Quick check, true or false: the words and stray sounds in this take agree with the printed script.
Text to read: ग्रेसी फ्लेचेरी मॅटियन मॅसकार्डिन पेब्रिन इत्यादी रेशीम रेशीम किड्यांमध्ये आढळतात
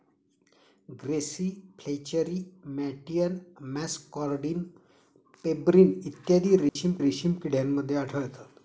false